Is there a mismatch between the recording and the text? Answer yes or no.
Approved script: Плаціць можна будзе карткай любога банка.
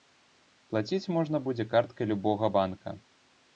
no